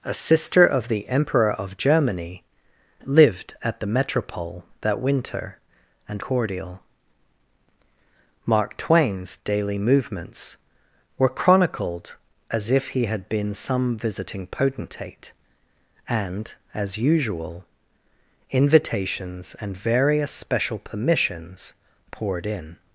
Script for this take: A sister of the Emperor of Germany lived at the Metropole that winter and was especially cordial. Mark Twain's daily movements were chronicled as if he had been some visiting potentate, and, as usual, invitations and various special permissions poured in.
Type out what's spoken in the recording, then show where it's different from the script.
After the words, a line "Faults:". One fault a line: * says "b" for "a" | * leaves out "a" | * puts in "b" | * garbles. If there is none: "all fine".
A sister of the Emperor of Germany lived at the Metropole that winter and cordial. Mark Twain's daily movements were chronicled as if he had been some visiting potentate, and, as usual, invitations and various special permissions poured in.
Faults:
* leaves out "was especially"